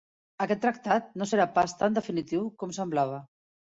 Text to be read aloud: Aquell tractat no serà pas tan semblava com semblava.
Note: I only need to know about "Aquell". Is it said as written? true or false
false